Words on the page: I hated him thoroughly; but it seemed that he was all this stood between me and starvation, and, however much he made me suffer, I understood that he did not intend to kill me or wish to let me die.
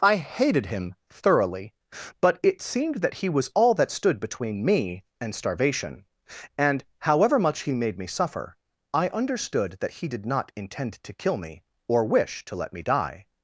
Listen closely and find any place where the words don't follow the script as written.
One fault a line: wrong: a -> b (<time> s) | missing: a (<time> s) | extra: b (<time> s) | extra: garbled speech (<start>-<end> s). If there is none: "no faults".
wrong: this -> that (3.8 s)